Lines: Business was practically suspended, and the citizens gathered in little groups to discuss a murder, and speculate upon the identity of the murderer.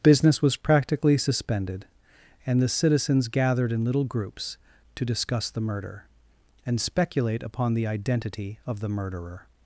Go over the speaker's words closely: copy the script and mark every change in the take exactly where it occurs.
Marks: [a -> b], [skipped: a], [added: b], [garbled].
Business was practically suspended, and the citizens gathered in little groups to discuss [a -> the] murder, and speculate upon the identity of the murderer.